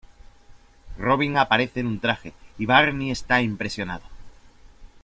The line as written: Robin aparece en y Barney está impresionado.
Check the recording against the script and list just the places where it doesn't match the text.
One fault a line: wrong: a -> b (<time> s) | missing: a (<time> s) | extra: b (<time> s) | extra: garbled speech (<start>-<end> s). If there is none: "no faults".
extra: un traje (1.9 s)